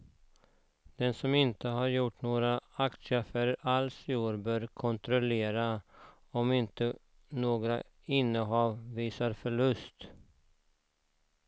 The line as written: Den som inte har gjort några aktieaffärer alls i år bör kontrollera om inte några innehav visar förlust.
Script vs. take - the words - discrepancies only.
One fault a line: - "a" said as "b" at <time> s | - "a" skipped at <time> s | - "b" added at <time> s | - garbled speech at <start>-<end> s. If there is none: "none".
none